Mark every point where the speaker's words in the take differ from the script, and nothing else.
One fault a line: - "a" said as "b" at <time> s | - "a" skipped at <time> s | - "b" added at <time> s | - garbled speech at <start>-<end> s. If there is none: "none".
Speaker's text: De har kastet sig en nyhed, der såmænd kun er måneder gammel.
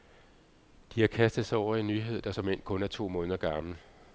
- "over" added at 1.6 s
- "to" added at 2.9 s